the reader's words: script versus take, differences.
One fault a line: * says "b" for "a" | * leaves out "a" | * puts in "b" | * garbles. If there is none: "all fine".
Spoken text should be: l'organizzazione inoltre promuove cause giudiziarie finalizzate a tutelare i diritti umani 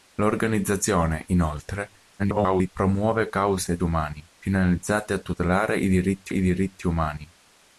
* garbles
* says "umani" for "giudiziarie"
* puts in "i diritti"